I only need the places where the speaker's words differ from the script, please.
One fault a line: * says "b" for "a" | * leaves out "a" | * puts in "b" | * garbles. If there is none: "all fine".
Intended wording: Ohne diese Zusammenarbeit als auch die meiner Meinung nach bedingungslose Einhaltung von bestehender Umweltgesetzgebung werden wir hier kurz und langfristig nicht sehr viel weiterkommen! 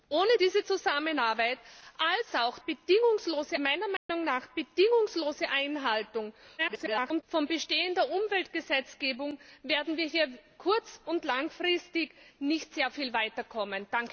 * says "bedingungslose" for "die"
* garbles